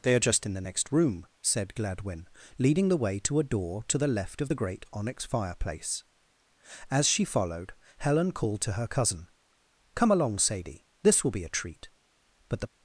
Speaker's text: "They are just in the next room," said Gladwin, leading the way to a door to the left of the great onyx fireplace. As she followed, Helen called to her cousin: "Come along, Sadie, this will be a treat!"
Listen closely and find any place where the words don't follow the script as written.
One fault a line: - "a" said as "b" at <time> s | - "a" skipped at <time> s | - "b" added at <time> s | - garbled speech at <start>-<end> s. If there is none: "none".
- "But the" added at 12.5 s